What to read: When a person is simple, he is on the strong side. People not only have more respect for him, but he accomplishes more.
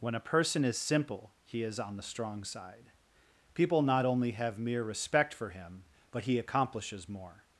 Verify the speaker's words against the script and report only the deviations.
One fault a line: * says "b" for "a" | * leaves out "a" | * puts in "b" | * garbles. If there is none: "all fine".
* says "mere" for "more"